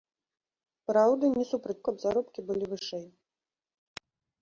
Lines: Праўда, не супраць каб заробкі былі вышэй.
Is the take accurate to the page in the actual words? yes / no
yes